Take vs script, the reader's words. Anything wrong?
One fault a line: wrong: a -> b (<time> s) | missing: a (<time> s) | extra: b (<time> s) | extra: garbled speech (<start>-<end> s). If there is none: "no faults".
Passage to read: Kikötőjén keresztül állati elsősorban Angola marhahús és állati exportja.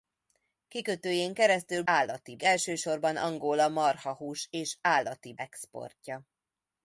no faults